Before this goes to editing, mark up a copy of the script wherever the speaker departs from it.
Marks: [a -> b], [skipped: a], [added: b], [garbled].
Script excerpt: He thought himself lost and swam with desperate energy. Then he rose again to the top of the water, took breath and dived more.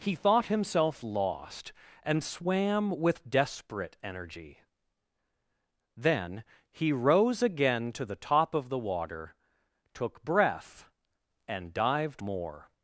He thought himself lost and swam with desperate energy. Then he rose again to the top of the water, took breath and dived more.